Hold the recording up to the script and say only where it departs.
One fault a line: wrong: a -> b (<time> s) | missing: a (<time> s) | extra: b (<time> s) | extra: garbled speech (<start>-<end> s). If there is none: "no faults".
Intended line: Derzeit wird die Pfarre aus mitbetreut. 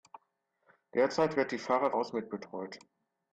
no faults